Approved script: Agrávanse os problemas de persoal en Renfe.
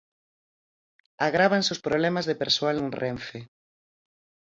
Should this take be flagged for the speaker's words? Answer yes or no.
no